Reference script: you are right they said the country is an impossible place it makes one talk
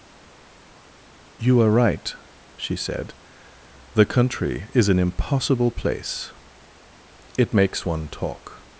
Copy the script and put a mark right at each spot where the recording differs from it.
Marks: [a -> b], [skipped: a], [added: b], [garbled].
you are right [they -> she] said the country is an impossible place it makes one talk